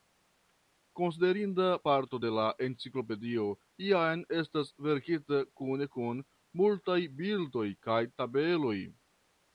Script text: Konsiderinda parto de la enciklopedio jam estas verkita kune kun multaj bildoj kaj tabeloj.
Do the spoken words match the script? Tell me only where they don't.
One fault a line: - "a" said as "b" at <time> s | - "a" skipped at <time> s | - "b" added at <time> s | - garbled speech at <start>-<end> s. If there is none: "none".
none